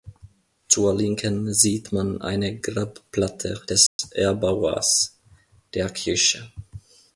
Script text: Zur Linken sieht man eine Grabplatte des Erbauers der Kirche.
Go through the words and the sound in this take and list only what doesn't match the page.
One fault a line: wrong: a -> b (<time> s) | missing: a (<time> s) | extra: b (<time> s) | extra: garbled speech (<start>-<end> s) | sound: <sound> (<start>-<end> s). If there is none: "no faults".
sound: dropout (3.9-4.0 s)